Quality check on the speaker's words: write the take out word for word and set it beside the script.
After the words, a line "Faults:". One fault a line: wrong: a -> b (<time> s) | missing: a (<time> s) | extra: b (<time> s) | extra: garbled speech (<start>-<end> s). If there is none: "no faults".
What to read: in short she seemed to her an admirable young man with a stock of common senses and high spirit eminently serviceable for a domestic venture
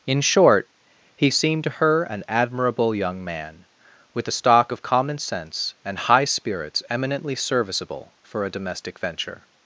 in short he seemed to her an admirable young man with a stock of common sense and high spirits eminently serviceable for a domestic venture
Faults:
wrong: she -> he (1.1 s)
wrong: senses -> sense (5.2 s)
wrong: spirit -> spirits (6.2 s)